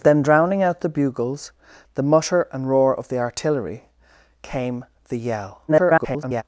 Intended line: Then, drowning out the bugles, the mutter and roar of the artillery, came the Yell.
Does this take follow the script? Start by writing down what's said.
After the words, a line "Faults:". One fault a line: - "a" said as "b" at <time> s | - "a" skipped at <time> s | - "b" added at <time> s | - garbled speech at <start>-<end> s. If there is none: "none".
Then, drowning out the bugles, the mutter and roar of the artillery, came the Yell. [garbled]
Faults:
- garbled speech at 5.7-6.4 s